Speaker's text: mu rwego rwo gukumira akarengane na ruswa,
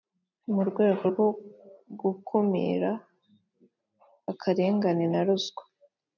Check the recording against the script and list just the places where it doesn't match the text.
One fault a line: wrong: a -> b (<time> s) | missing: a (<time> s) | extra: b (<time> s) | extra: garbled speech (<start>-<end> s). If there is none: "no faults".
no faults